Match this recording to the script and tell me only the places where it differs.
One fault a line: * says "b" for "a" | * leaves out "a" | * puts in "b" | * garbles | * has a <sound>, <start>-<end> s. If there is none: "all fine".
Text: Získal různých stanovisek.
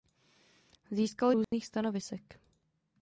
* has a dropout, 1.4-1.5 s